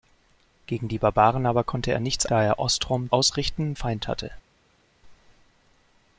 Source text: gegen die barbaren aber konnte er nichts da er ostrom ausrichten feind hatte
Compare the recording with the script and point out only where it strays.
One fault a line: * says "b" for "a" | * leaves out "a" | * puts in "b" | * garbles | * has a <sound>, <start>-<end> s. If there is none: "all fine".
all fine